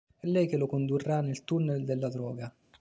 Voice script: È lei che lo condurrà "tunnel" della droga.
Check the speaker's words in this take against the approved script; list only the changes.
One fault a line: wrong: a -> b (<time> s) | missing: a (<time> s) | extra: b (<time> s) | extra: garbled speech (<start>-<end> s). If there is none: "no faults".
extra: nel (1.2 s)